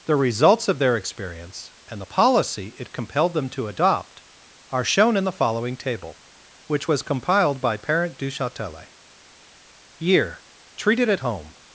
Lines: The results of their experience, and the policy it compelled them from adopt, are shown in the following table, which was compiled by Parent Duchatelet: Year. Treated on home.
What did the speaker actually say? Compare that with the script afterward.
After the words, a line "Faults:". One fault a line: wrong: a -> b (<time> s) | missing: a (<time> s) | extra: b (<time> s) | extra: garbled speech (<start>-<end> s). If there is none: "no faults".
The results of their experience, and the policy it compelled them to adopt, are shown in the following table, which was compiled by Parent Duchatelet: Year. Treated at home.
Faults:
wrong: from -> to (3.5 s)
wrong: on -> at (11.1 s)